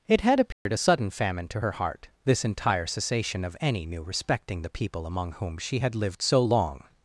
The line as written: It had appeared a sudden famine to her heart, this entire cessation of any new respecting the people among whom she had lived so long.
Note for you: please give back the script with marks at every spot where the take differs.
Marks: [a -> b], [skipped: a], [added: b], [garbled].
It had appeared a sudden famine to her heart, this entire cessation of any new respecting the people among whom she had lived so long.